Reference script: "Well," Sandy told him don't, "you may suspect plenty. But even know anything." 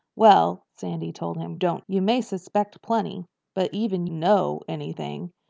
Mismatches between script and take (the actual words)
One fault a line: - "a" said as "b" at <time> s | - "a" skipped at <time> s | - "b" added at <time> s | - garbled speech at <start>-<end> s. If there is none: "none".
none